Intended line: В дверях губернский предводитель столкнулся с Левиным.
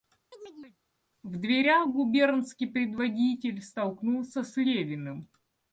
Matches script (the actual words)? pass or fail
pass